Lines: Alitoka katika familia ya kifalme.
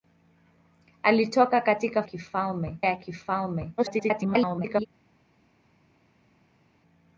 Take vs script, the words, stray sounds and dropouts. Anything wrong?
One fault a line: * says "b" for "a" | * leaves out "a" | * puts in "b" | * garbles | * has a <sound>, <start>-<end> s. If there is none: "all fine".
* says "kifalme" for "familia"
* garbles